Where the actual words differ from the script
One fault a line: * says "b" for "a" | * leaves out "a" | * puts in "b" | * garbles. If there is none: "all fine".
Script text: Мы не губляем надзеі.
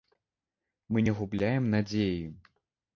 all fine